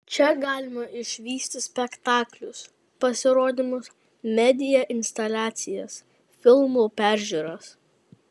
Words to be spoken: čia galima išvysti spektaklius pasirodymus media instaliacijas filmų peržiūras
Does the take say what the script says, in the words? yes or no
yes